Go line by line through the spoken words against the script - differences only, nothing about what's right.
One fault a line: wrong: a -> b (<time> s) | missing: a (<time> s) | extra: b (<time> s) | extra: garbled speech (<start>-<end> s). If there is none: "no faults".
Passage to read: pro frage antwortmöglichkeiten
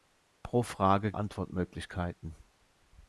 no faults